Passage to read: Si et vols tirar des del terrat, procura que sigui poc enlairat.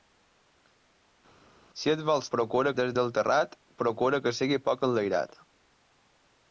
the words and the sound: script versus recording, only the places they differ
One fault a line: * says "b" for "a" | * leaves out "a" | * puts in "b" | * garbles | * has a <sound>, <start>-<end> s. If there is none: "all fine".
* says "procura" for "tirar"